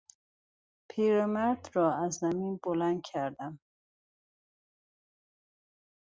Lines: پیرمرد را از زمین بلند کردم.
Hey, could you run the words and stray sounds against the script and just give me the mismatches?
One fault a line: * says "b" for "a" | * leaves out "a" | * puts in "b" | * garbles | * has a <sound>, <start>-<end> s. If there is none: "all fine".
all fine